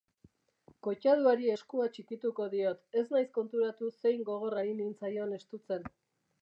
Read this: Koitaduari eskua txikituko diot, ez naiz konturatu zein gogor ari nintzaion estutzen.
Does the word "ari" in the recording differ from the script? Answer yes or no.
no